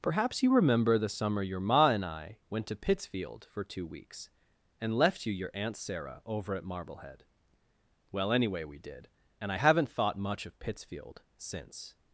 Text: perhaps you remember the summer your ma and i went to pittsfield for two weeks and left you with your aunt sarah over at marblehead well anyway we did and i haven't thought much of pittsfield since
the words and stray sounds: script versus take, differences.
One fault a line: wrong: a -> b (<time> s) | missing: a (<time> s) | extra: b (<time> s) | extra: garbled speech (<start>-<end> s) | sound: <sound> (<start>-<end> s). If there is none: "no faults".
missing: with (5.3 s)